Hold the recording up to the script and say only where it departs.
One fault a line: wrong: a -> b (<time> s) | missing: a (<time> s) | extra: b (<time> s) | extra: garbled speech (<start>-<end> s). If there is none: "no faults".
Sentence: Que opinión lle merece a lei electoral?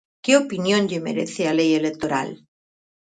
no faults